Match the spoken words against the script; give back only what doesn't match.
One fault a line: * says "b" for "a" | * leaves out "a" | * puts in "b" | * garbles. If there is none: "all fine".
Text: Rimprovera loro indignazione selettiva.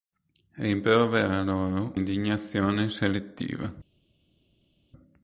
all fine